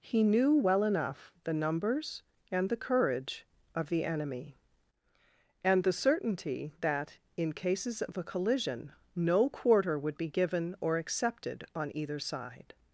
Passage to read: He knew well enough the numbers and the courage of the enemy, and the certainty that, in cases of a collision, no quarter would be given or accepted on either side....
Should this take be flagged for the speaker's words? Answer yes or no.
no